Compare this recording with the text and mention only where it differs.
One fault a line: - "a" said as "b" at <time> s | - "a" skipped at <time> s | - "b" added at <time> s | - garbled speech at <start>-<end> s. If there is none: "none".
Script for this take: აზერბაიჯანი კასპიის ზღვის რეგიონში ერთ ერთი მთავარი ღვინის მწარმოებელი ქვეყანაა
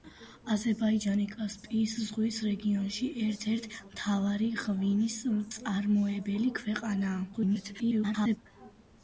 - garbled speech at 7.3-8.4 s